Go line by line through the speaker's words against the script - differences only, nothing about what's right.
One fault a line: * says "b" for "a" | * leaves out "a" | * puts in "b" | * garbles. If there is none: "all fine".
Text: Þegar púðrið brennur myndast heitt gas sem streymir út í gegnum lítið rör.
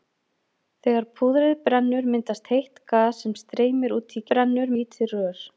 * says "brennur" for "gegnum"